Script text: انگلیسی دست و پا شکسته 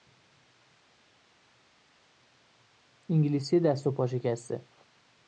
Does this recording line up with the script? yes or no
yes